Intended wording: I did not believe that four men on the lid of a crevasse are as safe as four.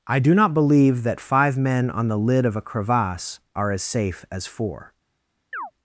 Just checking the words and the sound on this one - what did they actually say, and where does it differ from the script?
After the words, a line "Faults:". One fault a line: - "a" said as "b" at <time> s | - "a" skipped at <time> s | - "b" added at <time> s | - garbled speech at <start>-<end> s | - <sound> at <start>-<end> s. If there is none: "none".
I do not believe that five men on the lid of a crevasse are as safe as four.
Faults:
- "did" said as "do" at 0.2 s
- "four" said as "five" at 1.2 s
- chirp at 5.5-5.7 s